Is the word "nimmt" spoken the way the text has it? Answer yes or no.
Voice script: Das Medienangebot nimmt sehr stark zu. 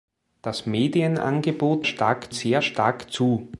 no